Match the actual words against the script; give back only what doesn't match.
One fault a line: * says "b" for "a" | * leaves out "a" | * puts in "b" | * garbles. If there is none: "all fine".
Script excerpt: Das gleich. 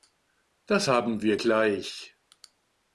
* puts in "haben wir"